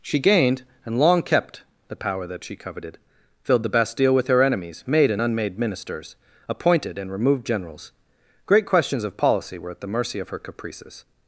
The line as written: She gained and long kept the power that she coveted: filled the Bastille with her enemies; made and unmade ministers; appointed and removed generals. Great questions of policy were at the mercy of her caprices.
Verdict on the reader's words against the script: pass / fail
pass